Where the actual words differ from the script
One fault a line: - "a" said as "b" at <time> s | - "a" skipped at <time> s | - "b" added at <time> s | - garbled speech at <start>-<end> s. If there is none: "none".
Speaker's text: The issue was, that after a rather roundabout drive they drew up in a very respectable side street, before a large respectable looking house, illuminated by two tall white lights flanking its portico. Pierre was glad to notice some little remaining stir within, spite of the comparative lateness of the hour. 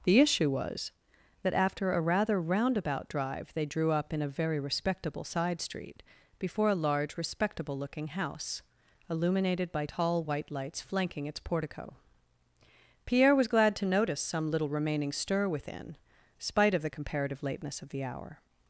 - "two" skipped at 9.9 s